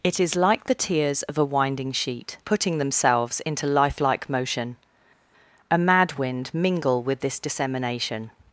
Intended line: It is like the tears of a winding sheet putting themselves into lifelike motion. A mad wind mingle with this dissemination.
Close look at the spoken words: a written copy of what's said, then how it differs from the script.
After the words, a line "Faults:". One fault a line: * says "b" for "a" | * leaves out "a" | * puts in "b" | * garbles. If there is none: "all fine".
It is like the tears of a winding sheet putting themselves into lifelike motion. A mad wind mingle with this dissemination.
Faults:
all fine